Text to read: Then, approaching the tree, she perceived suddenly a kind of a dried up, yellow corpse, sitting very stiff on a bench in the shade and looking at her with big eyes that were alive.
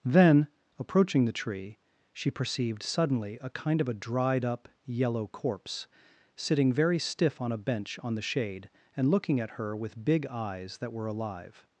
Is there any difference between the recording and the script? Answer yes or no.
yes